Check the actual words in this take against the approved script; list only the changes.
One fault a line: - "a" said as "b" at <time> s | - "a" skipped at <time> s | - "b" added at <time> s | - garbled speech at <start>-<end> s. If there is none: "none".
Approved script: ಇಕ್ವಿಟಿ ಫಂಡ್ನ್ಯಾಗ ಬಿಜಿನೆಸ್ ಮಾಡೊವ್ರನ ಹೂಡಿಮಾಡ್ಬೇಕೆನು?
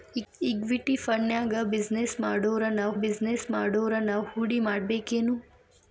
- "ಬಿಜಿನೆಸ್ ಮಾಡೊವ್ರನ" added at 3.0 s